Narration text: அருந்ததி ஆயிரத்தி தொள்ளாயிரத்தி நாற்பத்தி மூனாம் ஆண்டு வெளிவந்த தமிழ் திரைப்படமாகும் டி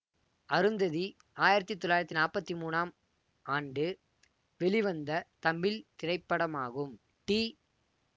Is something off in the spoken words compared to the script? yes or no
no